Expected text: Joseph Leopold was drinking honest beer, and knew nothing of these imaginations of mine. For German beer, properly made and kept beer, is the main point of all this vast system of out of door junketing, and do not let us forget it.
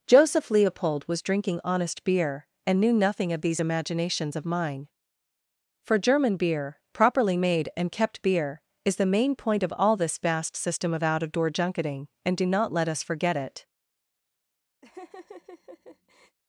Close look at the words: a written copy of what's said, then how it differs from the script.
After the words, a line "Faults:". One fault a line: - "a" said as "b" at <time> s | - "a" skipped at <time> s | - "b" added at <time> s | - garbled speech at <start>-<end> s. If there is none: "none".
Joseph Leopold was drinking honest beer, and knew nothing of these imaginations of mine. For German beer, properly made and kept beer, is the main point of all this vast system of out of door junketing, and do not let us forget it.
Faults:
none